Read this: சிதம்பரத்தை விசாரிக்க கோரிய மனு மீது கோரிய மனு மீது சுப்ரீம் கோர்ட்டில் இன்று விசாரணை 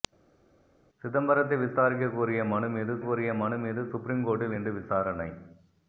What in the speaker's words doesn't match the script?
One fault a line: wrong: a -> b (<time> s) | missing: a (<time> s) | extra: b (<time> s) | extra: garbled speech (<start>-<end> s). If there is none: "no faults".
no faults